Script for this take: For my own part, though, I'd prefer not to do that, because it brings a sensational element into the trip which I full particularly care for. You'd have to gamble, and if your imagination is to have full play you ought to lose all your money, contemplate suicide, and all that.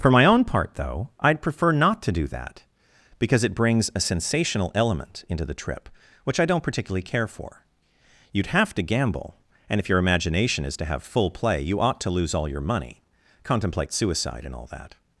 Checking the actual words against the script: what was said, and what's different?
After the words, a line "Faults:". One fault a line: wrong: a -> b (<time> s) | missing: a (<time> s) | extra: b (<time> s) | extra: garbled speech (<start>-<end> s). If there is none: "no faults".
For my own part, though, I'd prefer not to do that, because it brings a sensational element into the trip which I don't particularly care for. You'd have to gamble, and if your imagination is to have full play you ought to lose all your money, contemplate suicide, and all that.
Faults:
wrong: full -> don't (6.5 s)